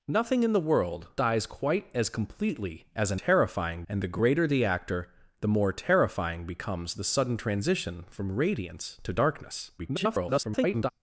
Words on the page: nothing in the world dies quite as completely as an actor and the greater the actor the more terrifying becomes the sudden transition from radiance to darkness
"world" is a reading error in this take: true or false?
false